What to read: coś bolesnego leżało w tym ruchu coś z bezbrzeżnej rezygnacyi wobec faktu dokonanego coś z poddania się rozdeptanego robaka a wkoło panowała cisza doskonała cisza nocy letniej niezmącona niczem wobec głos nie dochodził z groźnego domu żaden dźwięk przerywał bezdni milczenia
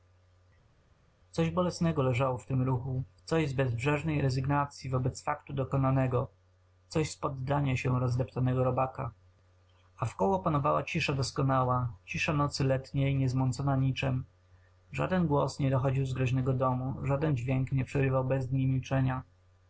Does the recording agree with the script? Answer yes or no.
no